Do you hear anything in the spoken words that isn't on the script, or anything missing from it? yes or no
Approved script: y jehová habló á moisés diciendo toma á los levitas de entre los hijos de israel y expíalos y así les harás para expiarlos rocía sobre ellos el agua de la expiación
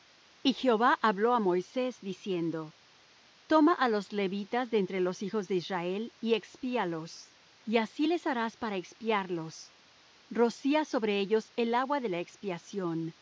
no